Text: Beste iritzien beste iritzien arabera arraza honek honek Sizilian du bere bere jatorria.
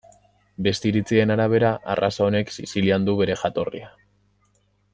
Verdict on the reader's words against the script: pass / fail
fail